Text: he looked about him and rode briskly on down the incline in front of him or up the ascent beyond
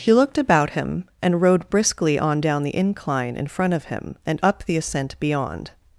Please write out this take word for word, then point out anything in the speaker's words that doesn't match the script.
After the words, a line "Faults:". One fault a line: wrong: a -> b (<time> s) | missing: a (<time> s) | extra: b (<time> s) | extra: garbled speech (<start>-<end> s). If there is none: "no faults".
he looked about him and rode briskly on down the incline in front of him and up the ascent beyond
Faults:
wrong: or -> and (4.2 s)